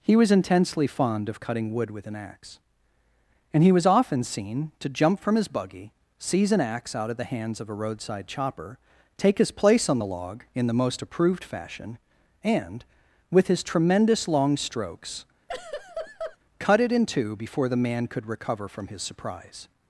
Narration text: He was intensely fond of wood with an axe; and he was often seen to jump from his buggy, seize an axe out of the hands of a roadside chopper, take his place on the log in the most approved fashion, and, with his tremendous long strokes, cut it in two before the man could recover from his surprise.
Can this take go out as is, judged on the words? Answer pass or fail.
fail